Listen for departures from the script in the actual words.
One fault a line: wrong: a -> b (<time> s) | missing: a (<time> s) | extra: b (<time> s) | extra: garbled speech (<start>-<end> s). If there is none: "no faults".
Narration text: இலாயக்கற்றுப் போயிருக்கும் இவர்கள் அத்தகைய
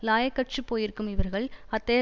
no faults